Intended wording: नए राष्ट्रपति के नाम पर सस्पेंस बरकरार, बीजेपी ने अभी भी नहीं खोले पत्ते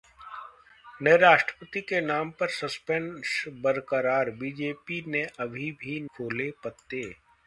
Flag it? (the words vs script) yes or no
yes